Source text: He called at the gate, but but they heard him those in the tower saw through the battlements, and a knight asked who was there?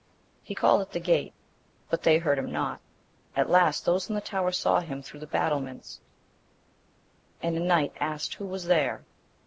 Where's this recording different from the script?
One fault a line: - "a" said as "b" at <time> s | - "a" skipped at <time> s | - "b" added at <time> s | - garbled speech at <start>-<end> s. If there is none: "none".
- "but" skipped at 2.0 s
- "not at last" added at 2.5 s
- "him" added at 4.8 s